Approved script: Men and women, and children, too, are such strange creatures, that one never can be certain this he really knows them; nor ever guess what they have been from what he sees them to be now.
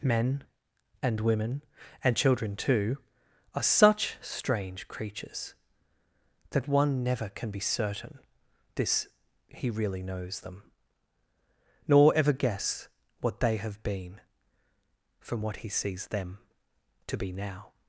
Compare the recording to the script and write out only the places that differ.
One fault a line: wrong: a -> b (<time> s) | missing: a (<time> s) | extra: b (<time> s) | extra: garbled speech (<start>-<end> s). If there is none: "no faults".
no faults